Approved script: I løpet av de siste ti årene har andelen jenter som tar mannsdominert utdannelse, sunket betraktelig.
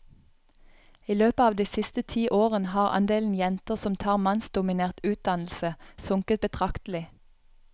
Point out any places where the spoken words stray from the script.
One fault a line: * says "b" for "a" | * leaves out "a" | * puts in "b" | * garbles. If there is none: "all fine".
all fine